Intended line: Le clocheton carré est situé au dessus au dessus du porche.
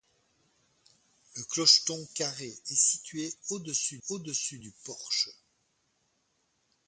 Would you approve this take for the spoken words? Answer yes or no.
yes